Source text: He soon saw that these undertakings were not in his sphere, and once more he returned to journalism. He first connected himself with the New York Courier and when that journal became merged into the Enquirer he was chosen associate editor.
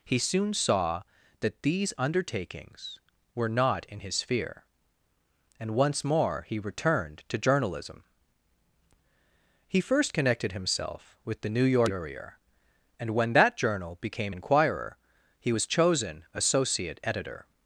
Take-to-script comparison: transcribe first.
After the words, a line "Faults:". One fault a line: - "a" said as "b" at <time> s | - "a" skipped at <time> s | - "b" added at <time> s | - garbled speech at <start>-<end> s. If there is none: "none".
He soon saw that these undertakings were not in his sphere, and once more he returned to journalism. He first connected himself with the New York Courier and when that journal became Enquirer he was chosen associate editor.
Faults:
- "merged into the" skipped at 14.3 s